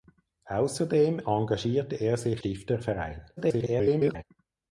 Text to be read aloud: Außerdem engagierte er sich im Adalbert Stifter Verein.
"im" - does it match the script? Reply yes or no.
no